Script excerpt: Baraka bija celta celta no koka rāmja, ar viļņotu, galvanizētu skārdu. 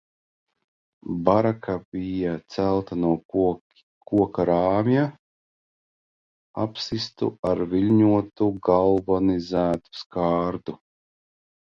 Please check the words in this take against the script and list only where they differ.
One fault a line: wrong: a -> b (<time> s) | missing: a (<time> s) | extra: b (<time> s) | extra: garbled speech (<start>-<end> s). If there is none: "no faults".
missing: celta (3.0 s)
extra: apsistu (6.7 s)